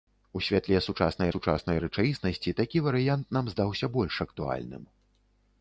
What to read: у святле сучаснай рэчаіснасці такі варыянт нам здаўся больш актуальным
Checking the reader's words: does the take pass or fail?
fail